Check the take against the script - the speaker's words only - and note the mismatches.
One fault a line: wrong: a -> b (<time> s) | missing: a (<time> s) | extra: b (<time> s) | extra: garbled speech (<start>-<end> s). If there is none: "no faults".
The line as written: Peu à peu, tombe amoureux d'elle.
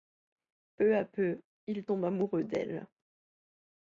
extra: il (1.7 s)